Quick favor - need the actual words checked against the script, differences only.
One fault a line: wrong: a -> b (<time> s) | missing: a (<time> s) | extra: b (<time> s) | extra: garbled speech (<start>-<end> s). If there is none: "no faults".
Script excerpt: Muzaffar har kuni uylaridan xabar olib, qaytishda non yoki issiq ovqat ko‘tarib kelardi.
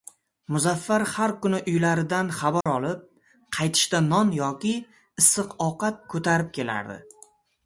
no faults